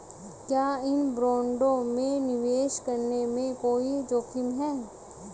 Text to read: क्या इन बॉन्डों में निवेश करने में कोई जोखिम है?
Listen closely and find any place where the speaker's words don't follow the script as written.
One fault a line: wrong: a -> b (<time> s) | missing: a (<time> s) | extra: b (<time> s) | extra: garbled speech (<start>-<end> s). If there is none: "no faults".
no faults